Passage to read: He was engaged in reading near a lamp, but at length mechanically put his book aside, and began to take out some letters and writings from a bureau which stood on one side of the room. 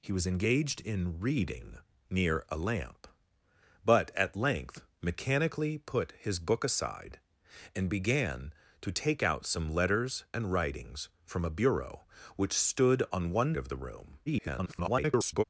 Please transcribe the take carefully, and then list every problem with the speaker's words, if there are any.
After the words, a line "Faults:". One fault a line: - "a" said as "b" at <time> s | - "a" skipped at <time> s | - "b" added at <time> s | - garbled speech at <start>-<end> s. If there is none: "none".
He was engaged in reading near a lamp, but at length mechanically put his book aside, and began to take out some letters and writings from a bureau which stood on one of the room. [garbled]
Faults:
- "side" skipped at 13.5 s
- garbled speech at 14.3-15.4 s